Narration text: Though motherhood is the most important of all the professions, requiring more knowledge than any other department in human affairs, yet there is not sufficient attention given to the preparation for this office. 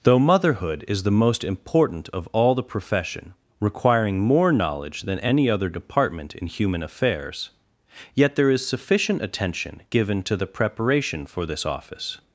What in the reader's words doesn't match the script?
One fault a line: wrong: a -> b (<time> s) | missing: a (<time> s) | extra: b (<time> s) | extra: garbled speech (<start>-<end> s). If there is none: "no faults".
wrong: professions -> profession (2.6 s)
missing: not (8.7 s)